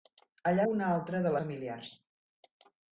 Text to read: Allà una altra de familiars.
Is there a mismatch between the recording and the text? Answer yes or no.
no